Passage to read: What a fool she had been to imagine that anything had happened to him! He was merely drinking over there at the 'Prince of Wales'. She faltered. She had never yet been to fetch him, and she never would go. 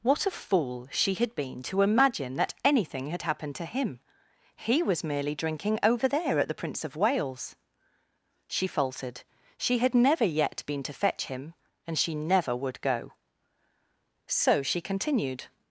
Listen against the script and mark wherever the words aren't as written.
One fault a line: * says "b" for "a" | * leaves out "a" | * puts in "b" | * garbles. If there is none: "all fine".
* puts in "So she continued"